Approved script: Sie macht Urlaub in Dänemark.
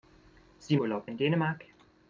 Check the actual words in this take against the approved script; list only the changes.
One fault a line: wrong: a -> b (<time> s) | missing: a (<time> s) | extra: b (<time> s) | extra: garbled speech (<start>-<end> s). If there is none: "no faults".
missing: macht (0.8 s)